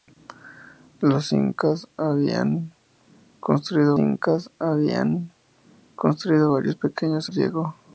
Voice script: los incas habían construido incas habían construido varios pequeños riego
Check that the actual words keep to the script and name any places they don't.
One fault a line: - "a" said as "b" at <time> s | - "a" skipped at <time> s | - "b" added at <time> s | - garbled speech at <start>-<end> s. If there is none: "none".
none